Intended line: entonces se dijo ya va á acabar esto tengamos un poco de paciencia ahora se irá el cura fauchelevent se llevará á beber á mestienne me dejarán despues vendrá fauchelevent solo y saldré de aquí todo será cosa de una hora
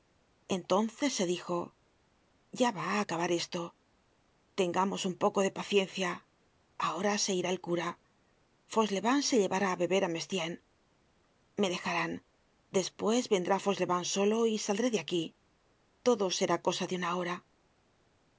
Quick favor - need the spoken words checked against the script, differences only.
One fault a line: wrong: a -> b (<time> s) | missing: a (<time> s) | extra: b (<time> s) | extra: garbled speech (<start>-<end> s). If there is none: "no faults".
no faults